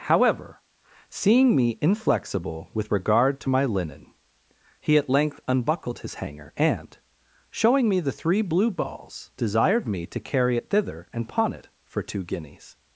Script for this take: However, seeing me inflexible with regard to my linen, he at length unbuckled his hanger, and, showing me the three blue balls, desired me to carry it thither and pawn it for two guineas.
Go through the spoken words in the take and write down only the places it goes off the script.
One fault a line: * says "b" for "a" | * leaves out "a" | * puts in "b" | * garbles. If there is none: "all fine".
all fine